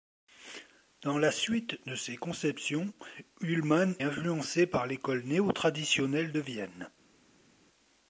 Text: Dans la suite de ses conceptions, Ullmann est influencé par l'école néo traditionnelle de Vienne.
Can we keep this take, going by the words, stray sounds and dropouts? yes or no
no